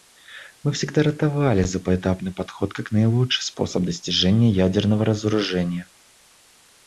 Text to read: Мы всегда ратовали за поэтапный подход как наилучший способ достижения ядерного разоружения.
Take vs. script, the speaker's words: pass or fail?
pass